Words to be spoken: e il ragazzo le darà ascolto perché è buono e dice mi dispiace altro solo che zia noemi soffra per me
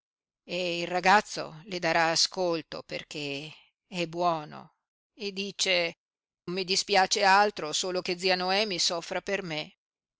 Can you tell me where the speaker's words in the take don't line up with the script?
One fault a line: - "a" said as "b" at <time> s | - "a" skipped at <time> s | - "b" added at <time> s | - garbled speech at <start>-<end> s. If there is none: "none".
none